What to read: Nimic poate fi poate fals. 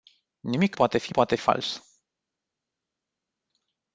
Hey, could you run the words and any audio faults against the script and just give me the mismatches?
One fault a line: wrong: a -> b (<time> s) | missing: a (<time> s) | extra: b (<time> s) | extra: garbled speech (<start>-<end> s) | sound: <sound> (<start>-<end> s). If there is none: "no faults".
no faults